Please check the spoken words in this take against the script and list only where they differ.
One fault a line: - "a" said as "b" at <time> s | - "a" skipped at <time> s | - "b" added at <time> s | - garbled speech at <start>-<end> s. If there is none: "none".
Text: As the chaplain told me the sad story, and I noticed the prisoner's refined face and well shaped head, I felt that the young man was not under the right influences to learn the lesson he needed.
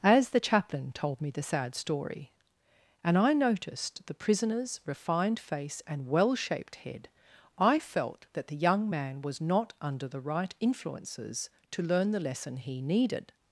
none